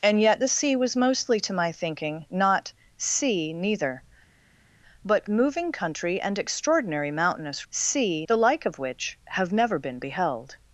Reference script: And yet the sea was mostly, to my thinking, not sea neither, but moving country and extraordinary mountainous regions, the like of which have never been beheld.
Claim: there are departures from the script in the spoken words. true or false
true